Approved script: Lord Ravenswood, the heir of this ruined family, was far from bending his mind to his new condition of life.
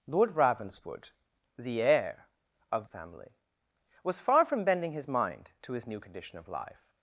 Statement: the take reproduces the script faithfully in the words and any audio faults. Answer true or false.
false